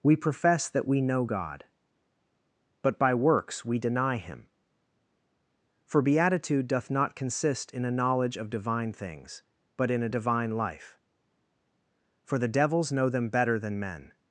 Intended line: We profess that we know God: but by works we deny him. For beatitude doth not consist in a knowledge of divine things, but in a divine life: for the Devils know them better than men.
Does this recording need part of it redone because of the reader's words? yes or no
no